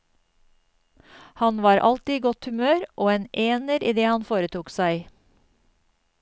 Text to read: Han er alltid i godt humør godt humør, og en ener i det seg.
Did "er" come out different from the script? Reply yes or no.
yes